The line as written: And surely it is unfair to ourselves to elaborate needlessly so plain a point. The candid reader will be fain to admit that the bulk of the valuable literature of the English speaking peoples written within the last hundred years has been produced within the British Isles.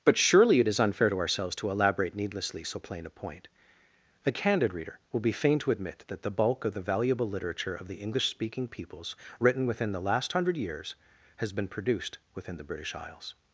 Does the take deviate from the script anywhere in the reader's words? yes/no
yes